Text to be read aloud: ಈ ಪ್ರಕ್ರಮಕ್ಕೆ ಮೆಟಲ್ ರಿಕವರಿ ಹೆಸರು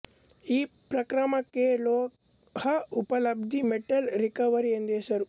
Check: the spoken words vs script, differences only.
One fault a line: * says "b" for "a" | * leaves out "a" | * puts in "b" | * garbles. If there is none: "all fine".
* puts in "ಲೋಹ ಉಪಲಬ್ಧಿ"
* puts in "ಎಂದು"